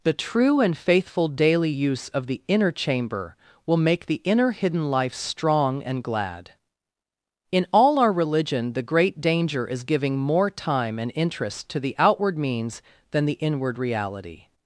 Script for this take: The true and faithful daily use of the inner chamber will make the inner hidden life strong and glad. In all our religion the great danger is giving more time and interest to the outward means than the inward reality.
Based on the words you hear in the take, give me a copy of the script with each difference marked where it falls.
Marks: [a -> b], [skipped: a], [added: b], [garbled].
The true and faithful daily use of the inner chamber will make the inner hidden life strong and glad. In all our religion the great danger is giving more time and interest to the outward means than the inward reality.